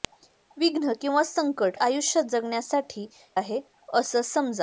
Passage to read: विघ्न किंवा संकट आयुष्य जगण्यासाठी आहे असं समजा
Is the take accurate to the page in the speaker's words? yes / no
yes